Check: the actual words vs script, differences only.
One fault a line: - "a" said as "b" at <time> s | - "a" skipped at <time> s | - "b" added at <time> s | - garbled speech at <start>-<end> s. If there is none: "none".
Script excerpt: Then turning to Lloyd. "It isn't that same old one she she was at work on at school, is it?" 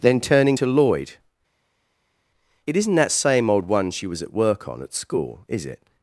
- "she" skipped at 4.1 s